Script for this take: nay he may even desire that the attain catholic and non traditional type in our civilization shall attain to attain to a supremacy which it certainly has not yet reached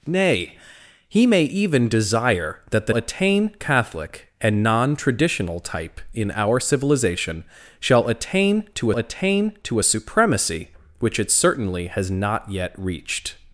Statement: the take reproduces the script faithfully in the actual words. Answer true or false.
true